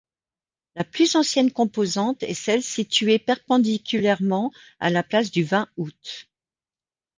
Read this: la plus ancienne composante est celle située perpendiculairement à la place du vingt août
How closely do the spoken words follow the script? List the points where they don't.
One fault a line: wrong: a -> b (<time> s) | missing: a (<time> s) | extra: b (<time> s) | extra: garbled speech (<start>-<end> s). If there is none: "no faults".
no faults